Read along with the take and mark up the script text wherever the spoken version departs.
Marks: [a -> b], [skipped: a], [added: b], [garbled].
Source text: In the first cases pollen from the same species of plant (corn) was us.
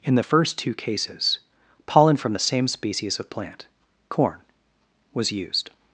In the first [added: two] cases pollen from the same species of plant (corn) was [us. -> used]